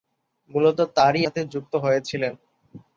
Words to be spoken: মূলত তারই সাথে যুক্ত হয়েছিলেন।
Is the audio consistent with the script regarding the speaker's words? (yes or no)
yes